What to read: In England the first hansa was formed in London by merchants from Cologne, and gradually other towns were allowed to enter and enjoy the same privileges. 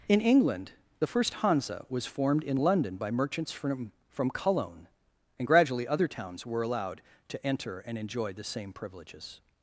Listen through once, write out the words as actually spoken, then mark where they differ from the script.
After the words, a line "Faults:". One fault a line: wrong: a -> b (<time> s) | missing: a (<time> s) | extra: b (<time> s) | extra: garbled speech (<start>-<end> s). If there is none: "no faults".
In England the first hansa was formed in London by merchants from from Cologne, and gradually other towns were allowed to enter and enjoy the same privileges.
Faults:
extra: from (4.1 s)